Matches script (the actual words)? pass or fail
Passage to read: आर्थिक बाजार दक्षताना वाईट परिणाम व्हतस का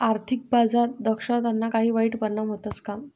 fail